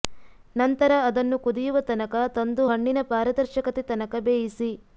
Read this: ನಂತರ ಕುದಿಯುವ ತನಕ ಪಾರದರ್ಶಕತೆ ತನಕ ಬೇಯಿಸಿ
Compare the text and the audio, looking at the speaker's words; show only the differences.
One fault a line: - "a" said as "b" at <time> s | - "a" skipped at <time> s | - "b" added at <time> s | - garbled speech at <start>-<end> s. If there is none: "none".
- "ಅದನ್ನು" added at 1.1 s
- "ತಂದು ಹಣ್ಣಿನ" added at 2.4 s